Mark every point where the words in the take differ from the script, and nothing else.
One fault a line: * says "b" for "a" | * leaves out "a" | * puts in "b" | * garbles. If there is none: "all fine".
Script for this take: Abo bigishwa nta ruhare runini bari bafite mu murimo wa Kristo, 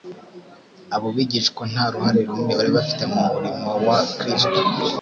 all fine